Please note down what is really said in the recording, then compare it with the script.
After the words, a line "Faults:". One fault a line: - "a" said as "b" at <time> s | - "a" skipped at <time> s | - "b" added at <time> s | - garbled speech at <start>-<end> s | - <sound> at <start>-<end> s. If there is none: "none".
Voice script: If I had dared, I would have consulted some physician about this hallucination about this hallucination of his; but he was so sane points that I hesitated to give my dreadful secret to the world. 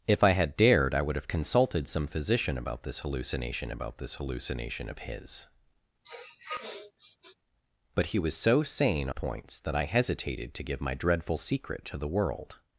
If I had dared, I would have consulted some physician about this hallucination about this hallucination of his; but he was so sane points that I hesitated to give my dreadful secret to the world.
Faults:
- sniff at 6.0-7.4 s